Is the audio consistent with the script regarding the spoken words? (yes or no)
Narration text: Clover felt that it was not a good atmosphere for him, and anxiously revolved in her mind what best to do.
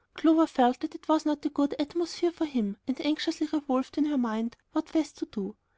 yes